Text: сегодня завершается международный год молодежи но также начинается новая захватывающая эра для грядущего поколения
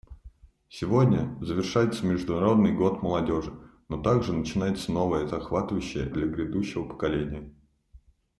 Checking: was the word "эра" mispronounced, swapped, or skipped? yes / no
yes